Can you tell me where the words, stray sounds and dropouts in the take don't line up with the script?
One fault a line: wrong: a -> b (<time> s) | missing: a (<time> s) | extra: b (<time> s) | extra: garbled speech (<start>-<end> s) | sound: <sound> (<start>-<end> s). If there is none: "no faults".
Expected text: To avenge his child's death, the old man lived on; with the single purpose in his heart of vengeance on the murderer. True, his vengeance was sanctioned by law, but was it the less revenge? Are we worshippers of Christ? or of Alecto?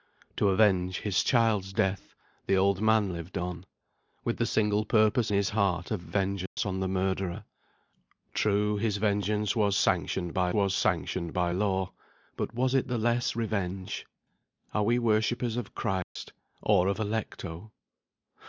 missing: in (5.3 s)
sound: dropout (6.5-6.6 s)
extra: was sanctioned by (10.5 s)
sound: dropout (16.0-16.2 s)